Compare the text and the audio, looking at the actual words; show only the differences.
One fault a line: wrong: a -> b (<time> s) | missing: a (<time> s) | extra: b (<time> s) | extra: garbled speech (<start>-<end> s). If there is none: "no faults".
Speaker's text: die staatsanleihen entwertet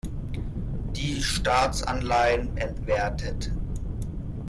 no faults